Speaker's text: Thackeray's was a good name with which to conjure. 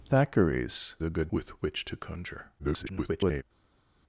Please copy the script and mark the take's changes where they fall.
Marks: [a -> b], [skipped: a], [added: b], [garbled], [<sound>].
Thackeray's [skipped: was] a good [skipped: name] with which to conjure. [garbled]